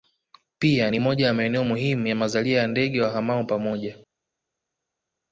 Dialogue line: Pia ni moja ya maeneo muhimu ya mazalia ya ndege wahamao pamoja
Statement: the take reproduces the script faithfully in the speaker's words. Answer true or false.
true